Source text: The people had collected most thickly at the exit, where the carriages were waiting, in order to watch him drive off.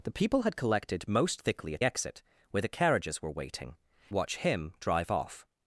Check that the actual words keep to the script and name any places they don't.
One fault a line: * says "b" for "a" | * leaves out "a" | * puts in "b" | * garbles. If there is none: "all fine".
* leaves out "the"
* leaves out "in order to"